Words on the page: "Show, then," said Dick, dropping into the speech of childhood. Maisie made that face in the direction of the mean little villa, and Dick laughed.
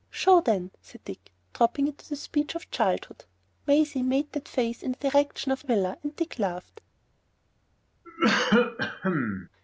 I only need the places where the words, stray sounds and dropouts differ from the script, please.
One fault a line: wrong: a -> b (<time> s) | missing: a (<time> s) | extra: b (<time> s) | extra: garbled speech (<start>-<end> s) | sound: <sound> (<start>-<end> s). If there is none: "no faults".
missing: the mean little (5.6 s)
sound: cough (8.0-9.5 s)